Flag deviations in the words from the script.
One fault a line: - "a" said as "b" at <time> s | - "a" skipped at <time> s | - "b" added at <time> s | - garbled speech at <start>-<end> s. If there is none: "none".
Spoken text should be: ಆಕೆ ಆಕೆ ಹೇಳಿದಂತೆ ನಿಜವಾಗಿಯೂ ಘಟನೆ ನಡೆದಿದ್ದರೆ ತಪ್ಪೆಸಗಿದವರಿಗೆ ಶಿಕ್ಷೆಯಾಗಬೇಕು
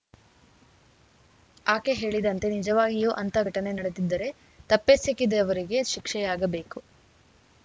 - "ಆಕೆ" skipped at 1.9 s
- "ಅಂಥ" added at 3.2 s